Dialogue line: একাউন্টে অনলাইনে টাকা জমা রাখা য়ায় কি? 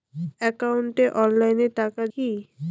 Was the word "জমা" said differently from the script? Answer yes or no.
yes